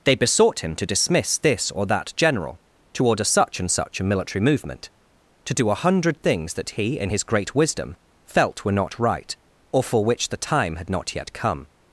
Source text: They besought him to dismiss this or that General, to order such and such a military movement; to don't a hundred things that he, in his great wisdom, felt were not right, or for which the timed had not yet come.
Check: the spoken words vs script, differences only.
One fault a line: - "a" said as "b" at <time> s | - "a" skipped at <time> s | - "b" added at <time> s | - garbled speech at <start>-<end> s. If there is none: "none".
- "don't" said as "do" at 5.5 s
- "timed" said as "time" at 10.4 s